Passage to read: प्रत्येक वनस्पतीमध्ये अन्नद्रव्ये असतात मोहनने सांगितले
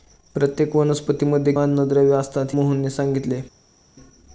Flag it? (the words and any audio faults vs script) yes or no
no